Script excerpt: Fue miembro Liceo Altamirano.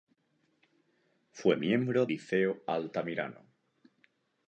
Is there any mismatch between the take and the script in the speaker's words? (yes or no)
no